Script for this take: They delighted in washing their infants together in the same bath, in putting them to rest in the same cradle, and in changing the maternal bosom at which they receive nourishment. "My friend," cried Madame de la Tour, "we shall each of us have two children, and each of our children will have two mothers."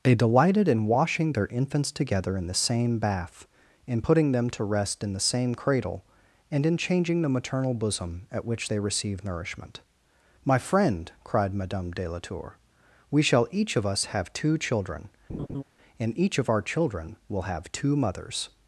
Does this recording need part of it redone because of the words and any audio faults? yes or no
yes